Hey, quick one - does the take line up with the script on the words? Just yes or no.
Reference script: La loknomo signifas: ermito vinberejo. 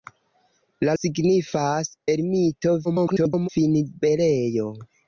no